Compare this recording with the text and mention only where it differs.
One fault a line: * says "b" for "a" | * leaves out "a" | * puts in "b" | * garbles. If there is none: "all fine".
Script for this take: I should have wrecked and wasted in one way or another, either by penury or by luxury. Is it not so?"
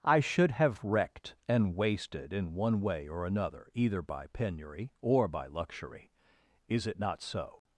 all fine